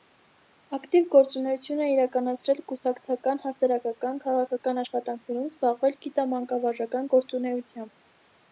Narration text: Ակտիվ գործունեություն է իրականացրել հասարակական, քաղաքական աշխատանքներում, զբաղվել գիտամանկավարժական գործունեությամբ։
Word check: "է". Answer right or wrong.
right